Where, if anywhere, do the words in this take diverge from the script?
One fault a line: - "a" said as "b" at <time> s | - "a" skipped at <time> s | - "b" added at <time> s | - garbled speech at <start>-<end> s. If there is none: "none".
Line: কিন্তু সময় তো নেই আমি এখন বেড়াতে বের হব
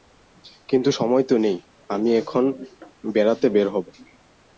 none